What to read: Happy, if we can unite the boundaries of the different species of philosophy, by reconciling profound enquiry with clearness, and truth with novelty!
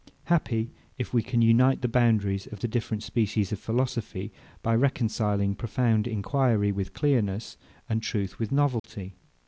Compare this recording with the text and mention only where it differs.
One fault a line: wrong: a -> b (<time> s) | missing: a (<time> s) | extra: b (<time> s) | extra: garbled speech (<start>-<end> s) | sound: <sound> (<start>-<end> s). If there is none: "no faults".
sound: dropout (8.8-8.8 s)